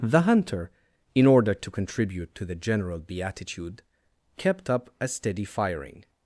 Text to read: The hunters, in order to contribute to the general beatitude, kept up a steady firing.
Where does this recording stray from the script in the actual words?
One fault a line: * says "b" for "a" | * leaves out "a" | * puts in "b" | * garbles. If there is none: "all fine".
* says "hunter" for "hunters"